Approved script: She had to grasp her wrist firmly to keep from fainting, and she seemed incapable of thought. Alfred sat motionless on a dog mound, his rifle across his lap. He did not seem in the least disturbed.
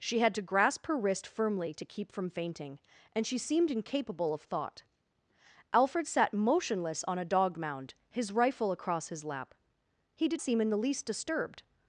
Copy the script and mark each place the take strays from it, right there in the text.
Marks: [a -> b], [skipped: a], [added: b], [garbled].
She had to grasp her wrist firmly to keep from fainting, and she seemed incapable of thought. Alfred sat motionless on a dog mound, his rifle across his lap. He did [skipped: not] seem in the least disturbed.